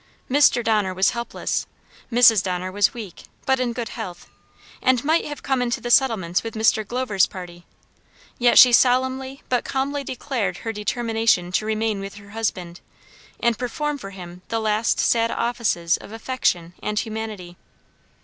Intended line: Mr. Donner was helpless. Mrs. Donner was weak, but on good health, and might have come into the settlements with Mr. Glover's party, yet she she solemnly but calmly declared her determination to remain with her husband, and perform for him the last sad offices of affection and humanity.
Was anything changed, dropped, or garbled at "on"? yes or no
yes